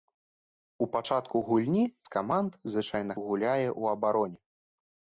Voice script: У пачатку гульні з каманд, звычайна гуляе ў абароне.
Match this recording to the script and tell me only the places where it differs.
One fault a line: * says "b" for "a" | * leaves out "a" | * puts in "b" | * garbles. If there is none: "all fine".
all fine